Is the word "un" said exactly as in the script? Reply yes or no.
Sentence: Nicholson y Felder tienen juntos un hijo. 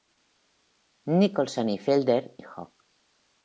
no